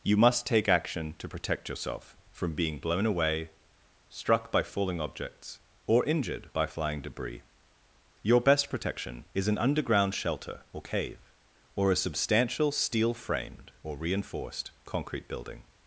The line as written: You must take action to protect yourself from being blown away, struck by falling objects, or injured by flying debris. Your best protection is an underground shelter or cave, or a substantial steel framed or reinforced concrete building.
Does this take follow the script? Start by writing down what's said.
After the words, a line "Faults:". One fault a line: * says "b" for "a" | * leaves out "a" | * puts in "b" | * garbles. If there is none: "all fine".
You must take action to protect yourself from being blown away, struck by falling objects, or injured by flying debris. Your best protection is an underground shelter or cave, or a substantial steel framed or reinforced concrete building.
Faults:
all fine